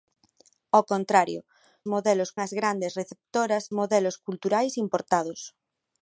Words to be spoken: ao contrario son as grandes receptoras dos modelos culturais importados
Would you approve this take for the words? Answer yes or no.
no